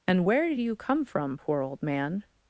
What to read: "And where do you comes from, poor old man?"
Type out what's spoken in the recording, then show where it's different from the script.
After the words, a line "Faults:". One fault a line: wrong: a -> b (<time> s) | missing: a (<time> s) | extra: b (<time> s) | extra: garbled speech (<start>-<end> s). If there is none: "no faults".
"And where do you come from, poor old man?"
Faults:
wrong: comes -> come (0.7 s)